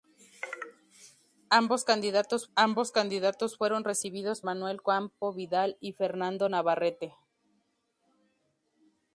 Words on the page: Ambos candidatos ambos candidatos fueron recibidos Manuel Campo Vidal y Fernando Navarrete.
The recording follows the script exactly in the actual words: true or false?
true